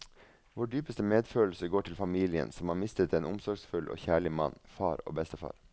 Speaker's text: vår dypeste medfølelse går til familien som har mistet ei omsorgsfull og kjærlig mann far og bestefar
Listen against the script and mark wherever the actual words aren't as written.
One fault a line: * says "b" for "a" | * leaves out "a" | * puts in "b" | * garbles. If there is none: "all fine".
* says "en" for "ei"